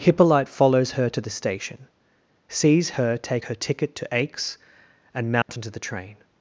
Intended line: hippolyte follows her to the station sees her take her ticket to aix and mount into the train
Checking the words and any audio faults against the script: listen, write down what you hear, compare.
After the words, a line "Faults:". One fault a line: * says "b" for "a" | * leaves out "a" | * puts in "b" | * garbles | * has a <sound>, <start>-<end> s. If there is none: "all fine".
hippolyte follows her to the station sees her take her ticket to aix and mount into the train
Faults:
* has a dropout, 5.4-5.5 s